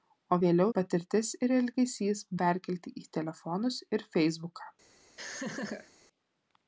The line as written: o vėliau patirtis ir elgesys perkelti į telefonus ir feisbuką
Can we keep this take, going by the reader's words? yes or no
yes